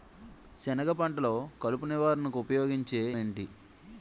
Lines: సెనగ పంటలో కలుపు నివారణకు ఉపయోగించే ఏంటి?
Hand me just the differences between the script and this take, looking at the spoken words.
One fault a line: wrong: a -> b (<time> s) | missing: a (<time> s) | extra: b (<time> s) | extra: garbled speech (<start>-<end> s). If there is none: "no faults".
no faults